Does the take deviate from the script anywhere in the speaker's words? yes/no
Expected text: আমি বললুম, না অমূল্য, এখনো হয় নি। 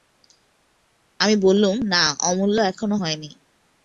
no